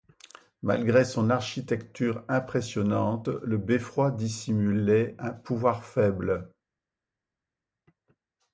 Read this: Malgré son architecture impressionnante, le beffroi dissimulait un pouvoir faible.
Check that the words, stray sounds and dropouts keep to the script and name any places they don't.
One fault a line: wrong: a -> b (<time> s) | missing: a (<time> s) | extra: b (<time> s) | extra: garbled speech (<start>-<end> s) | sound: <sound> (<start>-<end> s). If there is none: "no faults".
no faults